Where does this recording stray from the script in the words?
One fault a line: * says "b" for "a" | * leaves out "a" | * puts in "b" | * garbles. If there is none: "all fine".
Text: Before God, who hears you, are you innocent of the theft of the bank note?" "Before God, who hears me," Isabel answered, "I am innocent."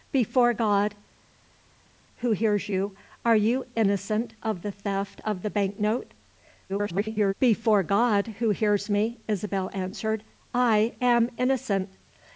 * garbles